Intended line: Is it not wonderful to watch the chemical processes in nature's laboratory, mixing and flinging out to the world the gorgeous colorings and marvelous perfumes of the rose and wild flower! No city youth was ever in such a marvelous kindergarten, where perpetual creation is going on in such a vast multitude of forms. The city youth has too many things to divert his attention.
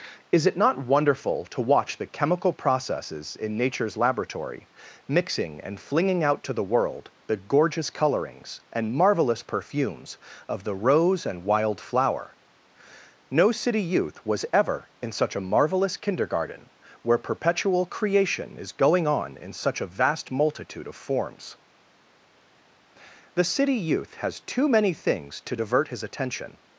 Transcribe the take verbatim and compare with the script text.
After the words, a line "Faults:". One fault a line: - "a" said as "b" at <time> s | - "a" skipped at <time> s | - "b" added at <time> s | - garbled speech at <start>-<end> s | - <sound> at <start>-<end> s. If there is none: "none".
Is it not wonderful to watch the chemical processes in nature's laboratory, mixing and flinging out to the world the gorgeous colorings and marvelous perfumes of the rose and wild flower! No city youth was ever in such a marvelous kindergarten, where perpetual creation is going on in such a vast multitude of forms. The city youth has too many things to divert his attention.
Faults:
none